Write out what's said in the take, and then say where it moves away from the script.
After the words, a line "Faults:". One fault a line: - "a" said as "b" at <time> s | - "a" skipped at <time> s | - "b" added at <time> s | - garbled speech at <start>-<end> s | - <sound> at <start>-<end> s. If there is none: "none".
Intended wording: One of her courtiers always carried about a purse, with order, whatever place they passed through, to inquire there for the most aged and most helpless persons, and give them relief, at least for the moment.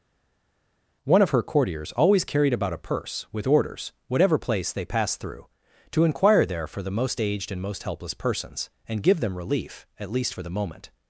One of her courtiers always carried about a purse, with orders, whatever place they passed through, to inquire there for the most aged and most helpless persons, and give them relief, at least for the moment.
Faults:
- "order" said as "orders" at 3.5 s